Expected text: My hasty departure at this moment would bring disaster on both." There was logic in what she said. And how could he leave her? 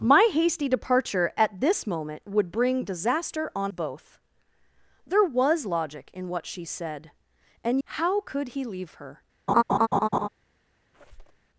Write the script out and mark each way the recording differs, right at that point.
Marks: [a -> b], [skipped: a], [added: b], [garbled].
My hasty departure at this moment would bring disaster on both." There was logic in what she said. And how could he leave her?